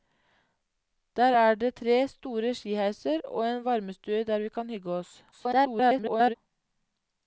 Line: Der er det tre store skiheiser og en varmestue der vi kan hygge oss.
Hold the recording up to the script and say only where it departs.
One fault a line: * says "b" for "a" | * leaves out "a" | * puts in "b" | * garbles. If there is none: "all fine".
* garbles